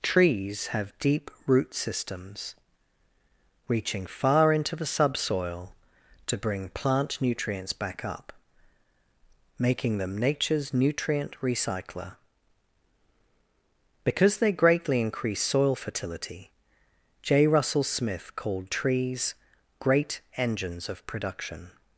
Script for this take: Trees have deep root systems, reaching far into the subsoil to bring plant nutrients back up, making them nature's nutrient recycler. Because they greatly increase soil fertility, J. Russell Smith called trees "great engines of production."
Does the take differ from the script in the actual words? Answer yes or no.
no